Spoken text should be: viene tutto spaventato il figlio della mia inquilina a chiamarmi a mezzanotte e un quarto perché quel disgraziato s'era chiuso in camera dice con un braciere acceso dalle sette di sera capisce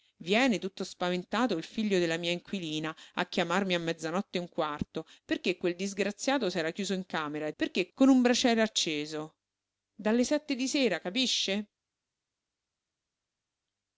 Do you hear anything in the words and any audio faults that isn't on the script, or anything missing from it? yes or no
yes